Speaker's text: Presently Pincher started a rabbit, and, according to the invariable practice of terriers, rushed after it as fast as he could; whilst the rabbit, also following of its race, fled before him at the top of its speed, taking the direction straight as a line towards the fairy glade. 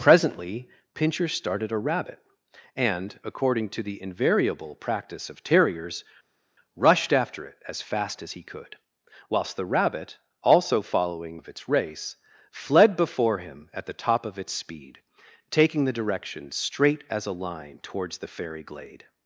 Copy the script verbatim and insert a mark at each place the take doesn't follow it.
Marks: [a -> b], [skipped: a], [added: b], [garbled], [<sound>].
Presently Pincher started a rabbit, and, according to the invariable practice of terriers, rushed after it as fast as he could; whilst the rabbit, also following of its race, fled before him at the top of its speed, taking the direction straight as a line towards the fairy glade.